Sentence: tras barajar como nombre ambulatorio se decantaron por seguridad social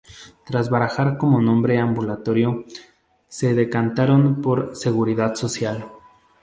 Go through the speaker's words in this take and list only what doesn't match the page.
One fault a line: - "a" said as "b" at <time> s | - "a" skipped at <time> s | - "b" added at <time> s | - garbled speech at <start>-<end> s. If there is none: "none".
none